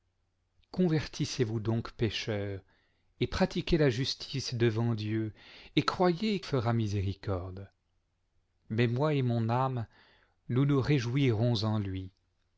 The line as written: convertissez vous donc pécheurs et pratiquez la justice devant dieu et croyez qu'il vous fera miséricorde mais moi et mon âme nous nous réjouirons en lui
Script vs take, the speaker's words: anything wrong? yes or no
yes